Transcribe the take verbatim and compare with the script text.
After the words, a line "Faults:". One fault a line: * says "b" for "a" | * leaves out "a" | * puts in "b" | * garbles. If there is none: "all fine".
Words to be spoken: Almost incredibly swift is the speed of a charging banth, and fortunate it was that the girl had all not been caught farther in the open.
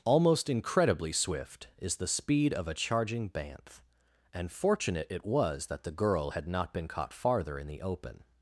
Almost incredibly swift is the speed of a charging banth, and fortunate it was that the girl had not been caught farther in the open.
Faults:
* leaves out "all"